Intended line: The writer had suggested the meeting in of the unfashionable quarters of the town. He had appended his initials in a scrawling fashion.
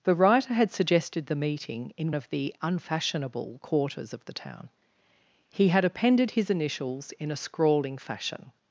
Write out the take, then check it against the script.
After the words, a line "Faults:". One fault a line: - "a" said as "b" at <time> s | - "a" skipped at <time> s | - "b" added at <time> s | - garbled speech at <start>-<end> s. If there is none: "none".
The writer had suggested the meeting in of the unfashionable quarters of the town. He had appended his initials in a scrawling fashion.
Faults:
none